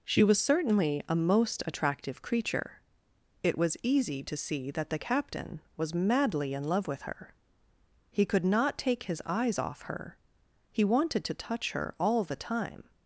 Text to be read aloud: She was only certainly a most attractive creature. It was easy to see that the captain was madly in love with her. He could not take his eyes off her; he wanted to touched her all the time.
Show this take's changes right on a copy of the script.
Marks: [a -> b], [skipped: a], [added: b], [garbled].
She was [skipped: only] certainly a most attractive creature. It was easy to see that the captain was madly in love with her. He could not take his eyes off her; he wanted to [touched -> touch] her all the time.